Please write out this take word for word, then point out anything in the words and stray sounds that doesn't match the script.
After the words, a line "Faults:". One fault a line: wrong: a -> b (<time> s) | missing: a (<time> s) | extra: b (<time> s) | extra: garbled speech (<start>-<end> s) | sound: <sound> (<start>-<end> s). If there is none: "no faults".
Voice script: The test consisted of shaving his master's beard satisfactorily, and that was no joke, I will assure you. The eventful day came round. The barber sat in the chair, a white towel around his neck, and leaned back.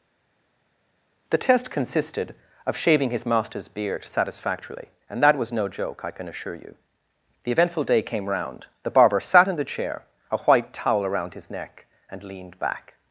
The test consisted of shaving his master's beard satisfactorily, and that was no joke, I can assure you. The eventful day came round. The barber sat in the chair, a white towel around his neck, and leaned back.
Faults:
wrong: will -> can (6.1 s)